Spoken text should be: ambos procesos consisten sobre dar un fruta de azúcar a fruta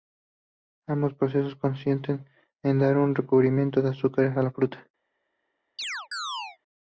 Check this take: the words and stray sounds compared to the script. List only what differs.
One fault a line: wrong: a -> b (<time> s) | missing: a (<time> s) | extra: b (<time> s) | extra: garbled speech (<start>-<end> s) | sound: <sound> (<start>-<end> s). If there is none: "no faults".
wrong: sobre -> en (2.6 s)
wrong: fruta -> recubrimiento (3.1 s)
extra: la (4.4 s)
sound: chirp (5.8-6.6 s)